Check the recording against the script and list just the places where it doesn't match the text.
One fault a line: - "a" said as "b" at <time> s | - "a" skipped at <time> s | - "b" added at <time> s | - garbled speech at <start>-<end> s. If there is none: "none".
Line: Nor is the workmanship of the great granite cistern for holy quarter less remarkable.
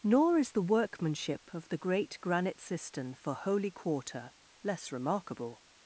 none